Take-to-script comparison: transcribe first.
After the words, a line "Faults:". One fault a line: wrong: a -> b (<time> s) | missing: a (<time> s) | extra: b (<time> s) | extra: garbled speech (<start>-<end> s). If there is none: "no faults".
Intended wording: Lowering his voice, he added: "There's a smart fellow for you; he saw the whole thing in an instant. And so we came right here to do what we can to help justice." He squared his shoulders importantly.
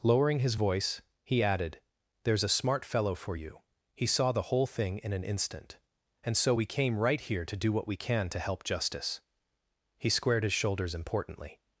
Lowering his voice, he added: "There's a smart fellow for you; he saw the whole thing in an instant. And so we came right here to do what we can to help justice." He squared his shoulders importantly.
Faults:
no faults